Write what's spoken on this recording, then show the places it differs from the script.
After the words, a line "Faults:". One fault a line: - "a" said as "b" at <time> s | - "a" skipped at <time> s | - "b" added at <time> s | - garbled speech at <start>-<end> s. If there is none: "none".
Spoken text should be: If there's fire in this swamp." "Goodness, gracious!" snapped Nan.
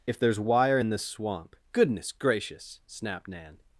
If there's wire in this swamp." "Goodness, gracious!" snapped Nan.
Faults:
- "fire" said as "wire" at 0.4 s